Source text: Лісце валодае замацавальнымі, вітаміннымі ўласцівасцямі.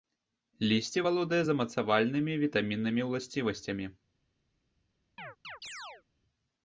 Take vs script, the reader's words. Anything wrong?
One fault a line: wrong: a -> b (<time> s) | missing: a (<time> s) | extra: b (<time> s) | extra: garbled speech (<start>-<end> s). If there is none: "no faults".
no faults